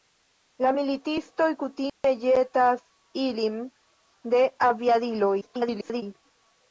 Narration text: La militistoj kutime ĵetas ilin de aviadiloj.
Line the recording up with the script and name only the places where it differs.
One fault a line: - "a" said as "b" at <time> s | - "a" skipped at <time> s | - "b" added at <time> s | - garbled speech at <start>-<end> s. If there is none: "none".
- garbled speech at 5.4-6.0 s